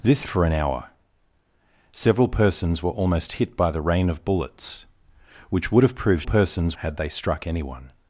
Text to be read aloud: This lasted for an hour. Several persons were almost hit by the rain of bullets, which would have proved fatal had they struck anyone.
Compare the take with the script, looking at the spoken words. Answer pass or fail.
fail